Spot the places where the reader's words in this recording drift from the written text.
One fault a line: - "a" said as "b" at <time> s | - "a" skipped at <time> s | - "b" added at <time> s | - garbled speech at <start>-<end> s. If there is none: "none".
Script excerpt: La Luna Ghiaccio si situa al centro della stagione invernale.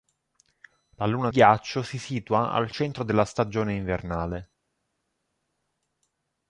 none